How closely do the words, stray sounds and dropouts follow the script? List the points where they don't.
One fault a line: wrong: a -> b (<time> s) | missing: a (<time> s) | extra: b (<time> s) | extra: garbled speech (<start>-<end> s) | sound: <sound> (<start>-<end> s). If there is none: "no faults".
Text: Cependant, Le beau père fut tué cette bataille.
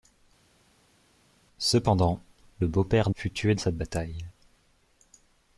no faults